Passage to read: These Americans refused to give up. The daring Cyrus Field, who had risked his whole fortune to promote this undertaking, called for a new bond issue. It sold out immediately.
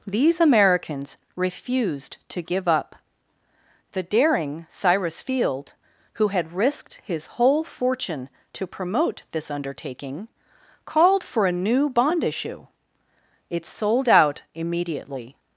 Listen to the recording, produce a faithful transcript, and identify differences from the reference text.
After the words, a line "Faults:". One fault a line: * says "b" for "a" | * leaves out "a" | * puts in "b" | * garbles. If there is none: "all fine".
These Americans refused to give up. The daring Cyrus Field, who had risked his whole fortune to promote this undertaking, called for a new bond issue. It sold out immediately.
Faults:
all fine